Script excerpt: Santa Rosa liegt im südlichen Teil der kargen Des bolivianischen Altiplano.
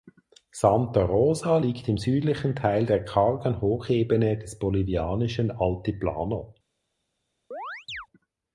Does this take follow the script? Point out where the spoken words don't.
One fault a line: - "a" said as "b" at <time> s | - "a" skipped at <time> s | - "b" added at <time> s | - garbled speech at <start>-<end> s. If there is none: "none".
- "Hochebene" added at 3.6 s